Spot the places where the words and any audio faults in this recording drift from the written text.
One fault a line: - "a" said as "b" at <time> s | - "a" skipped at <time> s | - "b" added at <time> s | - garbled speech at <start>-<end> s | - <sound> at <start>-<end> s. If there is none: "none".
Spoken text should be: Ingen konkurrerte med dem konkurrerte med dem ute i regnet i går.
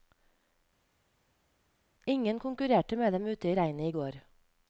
- "konkurrerte med dem" skipped at 3.3 s